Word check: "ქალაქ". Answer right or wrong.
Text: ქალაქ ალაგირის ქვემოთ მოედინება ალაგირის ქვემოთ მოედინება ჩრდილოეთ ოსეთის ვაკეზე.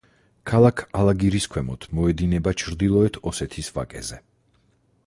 right